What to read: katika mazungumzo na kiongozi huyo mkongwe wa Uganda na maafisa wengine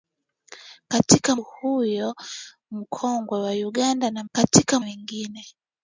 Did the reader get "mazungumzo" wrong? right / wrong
wrong